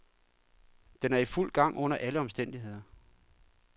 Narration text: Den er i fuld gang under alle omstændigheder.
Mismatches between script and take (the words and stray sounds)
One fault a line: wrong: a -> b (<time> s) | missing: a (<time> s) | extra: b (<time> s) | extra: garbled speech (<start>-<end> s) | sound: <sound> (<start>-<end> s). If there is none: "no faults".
no faults